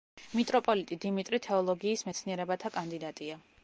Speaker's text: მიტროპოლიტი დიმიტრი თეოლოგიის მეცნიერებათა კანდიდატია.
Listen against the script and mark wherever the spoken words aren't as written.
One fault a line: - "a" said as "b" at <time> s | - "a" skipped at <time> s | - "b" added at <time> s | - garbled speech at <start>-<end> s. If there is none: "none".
none